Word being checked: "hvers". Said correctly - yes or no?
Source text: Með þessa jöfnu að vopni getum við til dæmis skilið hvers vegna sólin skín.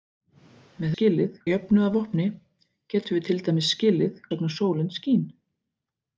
no